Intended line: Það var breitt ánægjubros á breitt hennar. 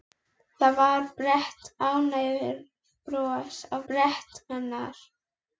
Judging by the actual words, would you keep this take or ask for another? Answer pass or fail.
pass